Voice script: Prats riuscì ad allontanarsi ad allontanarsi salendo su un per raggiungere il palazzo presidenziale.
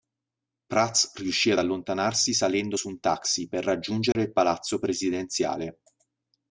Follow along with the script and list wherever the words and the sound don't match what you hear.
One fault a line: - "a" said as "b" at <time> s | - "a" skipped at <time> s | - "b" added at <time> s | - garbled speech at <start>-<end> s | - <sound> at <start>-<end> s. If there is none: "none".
- "ad allontanarsi" skipped at 2.3 s
- "taxi" added at 3.0 s
- dropout at 4.1-4.2 s